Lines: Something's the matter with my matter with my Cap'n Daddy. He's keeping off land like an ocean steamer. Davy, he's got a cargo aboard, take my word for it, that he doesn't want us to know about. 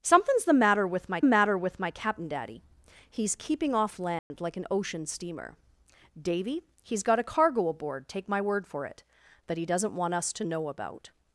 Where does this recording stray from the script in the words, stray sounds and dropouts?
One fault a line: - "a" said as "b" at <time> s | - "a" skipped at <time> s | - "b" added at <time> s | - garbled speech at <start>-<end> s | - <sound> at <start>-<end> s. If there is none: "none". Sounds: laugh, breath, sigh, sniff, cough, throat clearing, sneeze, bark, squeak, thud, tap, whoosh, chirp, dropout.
- dropout at 4.2-4.3 s